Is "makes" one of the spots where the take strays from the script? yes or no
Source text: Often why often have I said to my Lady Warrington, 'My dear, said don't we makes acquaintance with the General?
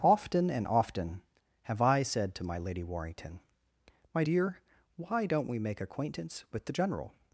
yes